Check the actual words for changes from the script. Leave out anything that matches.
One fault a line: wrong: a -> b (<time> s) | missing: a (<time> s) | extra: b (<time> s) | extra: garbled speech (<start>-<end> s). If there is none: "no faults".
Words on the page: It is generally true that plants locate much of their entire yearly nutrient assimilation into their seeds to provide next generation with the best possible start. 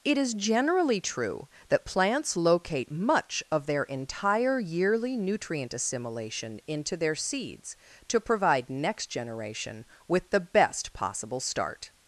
no faults